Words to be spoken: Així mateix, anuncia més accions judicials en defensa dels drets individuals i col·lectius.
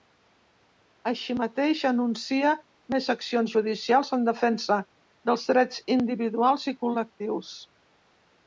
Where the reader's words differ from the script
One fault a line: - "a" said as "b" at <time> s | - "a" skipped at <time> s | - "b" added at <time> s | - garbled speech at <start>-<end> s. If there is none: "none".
none